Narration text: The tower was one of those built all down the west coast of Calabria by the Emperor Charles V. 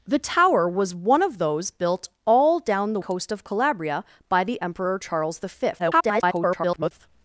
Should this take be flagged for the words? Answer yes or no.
yes